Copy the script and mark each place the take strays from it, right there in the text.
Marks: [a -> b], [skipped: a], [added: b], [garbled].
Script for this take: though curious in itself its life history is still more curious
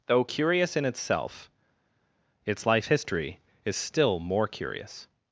though curious in itself its life history is still more curious